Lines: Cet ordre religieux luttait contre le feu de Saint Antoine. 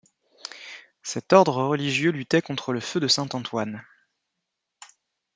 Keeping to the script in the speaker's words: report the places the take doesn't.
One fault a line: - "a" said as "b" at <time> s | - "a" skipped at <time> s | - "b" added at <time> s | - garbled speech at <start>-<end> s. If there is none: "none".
none